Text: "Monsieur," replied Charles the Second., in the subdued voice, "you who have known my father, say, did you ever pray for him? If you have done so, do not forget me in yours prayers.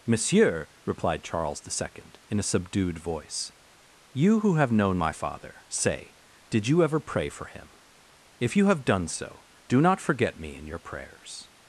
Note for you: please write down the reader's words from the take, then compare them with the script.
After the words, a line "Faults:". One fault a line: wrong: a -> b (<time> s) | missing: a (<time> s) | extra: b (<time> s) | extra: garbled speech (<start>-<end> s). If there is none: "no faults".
"Monsieur," replied Charles the Second., in a subdued voice, "you who have known my father, say, did you ever pray for him? If you have done so, do not forget me in your prayers.
Faults:
wrong: the -> a (2.4 s)
wrong: yours -> your (10.7 s)